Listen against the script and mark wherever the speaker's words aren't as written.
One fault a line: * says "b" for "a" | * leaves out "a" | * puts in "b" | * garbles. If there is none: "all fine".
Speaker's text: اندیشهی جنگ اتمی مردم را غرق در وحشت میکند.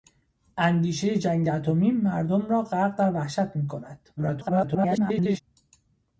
* garbles